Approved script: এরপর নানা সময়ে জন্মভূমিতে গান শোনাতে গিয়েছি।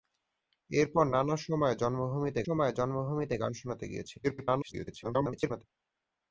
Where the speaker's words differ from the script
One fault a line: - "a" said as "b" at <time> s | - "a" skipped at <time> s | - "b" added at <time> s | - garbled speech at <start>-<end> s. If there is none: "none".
- "সময়ে জন্মভূমিতে" added at 2.4 s
- garbled speech at 4.2-5.6 s